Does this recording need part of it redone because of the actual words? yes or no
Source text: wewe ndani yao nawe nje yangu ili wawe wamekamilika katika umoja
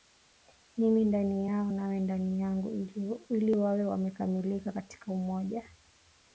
yes